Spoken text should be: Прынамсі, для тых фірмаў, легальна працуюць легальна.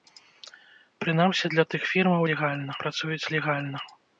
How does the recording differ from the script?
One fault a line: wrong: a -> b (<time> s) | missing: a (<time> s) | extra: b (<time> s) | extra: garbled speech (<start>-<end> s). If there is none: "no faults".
no faults